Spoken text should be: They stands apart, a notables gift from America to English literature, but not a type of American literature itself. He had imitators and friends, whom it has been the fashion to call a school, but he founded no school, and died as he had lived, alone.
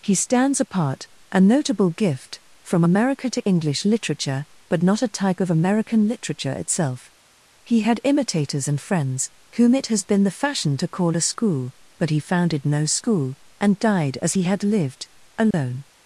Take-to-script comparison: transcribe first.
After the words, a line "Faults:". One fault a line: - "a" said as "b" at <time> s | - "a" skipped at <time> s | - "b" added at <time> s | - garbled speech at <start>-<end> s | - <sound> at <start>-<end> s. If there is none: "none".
He stands apart, a notable gift from America to English literature, but not a type of American literature itself. He had imitators and friends, whom it has been the fashion to call a school, but he founded no school, and died as he had lived, alone.
Faults:
- "They" said as "He" at 0.0 s
- "notables" said as "notable" at 1.4 s
- dropout at 15.5-15.5 s